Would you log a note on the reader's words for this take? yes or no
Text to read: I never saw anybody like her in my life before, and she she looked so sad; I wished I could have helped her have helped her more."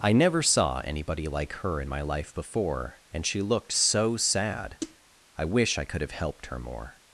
yes